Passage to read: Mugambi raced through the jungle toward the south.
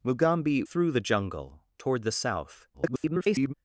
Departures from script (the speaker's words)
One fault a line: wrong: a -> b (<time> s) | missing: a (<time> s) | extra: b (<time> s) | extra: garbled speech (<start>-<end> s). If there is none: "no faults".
missing: raced (0.6 s)
extra: garbled speech (2.7-3.5 s)